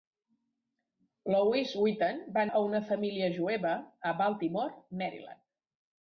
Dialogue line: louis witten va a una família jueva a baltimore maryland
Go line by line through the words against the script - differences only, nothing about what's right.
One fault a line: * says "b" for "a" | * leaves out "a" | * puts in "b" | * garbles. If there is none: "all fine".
all fine